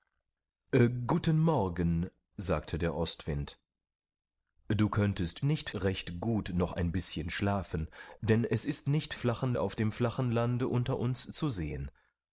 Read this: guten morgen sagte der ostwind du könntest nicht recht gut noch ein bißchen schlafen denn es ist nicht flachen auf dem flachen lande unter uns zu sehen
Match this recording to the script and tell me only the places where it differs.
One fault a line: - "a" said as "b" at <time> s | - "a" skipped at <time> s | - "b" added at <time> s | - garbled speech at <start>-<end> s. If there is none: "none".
none